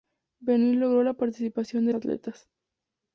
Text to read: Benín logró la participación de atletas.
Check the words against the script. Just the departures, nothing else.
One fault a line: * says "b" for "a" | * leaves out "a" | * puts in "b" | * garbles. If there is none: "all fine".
all fine